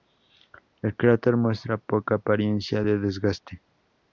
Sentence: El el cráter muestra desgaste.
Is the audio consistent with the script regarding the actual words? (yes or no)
no